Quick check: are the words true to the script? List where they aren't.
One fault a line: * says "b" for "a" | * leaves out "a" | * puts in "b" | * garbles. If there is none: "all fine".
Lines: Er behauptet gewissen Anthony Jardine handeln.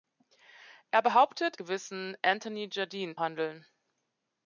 all fine